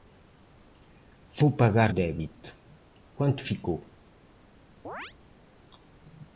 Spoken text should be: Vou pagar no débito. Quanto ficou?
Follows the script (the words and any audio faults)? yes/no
no